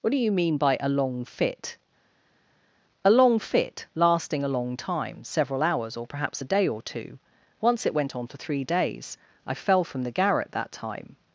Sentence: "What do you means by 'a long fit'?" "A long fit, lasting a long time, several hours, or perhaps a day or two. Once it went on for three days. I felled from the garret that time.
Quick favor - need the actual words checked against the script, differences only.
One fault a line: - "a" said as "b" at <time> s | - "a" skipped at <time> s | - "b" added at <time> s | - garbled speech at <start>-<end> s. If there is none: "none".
- "means" said as "mean" at 0.3 s
- "felled" said as "fell" at 9.5 s